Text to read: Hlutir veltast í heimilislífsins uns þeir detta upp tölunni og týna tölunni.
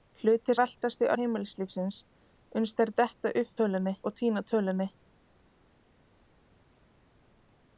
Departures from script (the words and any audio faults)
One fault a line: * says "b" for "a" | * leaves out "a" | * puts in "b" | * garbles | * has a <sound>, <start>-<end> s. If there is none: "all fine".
all fine